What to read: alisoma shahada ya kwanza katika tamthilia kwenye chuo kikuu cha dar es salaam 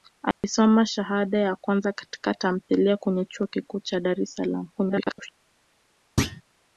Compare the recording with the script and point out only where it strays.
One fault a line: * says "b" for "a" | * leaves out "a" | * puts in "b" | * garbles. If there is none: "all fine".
* garbles